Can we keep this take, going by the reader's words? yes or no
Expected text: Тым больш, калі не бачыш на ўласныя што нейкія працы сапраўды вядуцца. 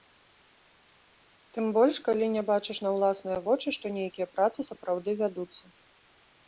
no